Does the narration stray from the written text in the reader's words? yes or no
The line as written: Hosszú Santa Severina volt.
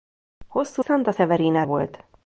no